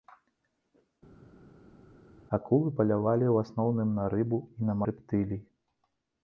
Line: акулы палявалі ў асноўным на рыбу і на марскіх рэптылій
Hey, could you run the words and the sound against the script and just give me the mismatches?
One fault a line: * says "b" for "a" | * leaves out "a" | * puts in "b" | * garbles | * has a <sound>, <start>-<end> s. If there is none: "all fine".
* leaves out "марскіх"